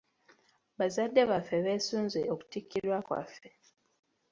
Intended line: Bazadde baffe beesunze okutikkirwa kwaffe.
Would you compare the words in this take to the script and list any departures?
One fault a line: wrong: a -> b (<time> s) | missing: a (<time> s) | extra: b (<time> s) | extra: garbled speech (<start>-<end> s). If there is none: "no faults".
no faults